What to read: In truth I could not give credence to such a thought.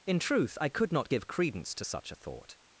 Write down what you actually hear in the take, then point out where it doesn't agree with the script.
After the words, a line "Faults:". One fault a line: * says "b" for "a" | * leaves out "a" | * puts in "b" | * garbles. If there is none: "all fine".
In truth I could not give credence to such a thought.
Faults:
all fine